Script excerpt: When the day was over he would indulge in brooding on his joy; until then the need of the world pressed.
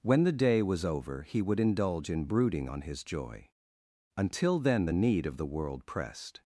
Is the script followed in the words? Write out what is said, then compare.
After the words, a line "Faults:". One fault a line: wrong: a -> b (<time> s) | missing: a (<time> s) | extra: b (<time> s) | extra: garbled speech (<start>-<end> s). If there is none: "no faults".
When the day was over he would indulge in brooding on his joy; until then the need of the world pressed.
Faults:
no faults